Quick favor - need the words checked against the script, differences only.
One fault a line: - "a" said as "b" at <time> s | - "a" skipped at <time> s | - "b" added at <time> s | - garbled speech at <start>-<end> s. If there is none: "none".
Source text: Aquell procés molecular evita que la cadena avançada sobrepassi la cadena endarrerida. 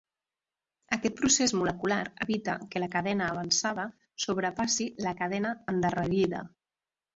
- "Aquell" said as "Aquest" at 0.9 s